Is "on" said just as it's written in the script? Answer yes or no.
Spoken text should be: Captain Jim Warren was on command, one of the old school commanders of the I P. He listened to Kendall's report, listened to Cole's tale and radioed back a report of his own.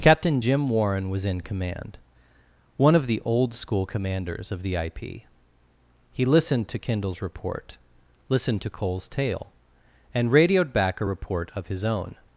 no